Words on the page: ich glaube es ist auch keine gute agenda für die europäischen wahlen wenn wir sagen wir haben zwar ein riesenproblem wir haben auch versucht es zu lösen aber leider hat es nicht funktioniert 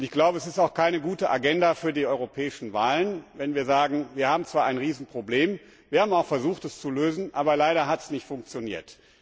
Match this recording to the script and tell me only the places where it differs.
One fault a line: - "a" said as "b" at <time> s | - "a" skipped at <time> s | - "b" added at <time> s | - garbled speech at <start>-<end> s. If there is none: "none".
none